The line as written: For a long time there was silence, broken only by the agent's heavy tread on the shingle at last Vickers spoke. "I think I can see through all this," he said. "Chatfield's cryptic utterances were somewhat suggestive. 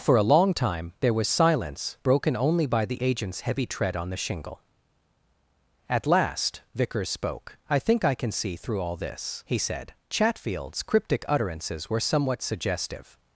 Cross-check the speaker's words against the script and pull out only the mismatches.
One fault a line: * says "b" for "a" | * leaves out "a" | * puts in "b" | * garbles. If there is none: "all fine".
all fine